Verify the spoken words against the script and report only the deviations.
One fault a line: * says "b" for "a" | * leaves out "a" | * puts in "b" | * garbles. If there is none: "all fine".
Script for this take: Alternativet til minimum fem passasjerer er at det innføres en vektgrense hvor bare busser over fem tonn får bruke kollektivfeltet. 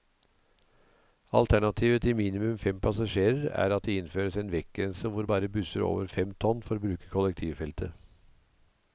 all fine